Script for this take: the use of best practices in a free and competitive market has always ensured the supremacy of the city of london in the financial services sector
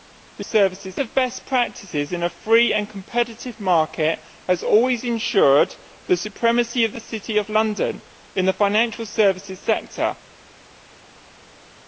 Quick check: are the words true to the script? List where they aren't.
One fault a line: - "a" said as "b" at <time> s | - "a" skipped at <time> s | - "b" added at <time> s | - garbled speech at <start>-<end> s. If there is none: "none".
- "use" said as "services" at 0.4 s